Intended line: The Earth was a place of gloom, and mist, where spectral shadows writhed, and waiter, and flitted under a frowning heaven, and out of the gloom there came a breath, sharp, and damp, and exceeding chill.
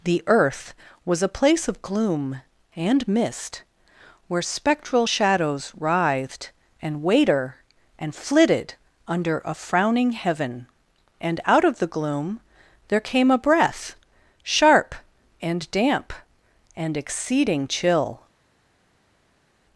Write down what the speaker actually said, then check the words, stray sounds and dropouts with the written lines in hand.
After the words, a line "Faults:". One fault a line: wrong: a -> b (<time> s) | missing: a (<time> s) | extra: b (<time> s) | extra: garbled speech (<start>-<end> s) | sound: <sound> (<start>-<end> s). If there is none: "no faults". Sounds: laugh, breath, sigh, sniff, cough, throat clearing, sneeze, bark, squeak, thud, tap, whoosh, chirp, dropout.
The Earth was a place of gloom, and mist, where spectral shadows writhed, and waiter, and flitted under a frowning heaven, and out of the gloom there came a breath, sharp, and damp, and exceeding chill.
Faults:
no faults